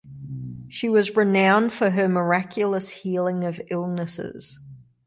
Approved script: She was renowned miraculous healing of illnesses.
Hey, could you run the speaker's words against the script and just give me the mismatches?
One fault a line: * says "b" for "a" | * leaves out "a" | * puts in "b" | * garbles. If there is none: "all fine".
* puts in "for her"